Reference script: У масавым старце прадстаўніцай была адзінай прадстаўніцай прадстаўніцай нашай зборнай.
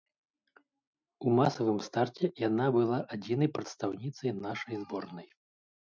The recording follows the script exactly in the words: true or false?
false